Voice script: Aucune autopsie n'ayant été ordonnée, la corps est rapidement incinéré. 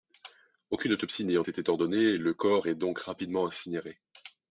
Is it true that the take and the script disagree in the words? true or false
true